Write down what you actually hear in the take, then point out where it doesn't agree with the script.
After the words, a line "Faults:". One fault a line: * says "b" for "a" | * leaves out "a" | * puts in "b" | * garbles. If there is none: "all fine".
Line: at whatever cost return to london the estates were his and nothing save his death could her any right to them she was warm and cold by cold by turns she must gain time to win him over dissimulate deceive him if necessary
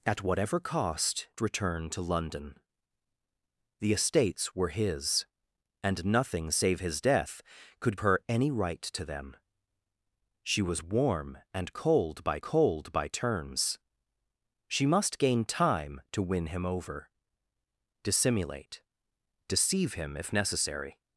at whatever cost return to london the estates were his and nothing save his death could her any right to them she was warm and cold by cold by turns she must gain time to win him over dissimulate deceive him if necessary
Faults:
all fine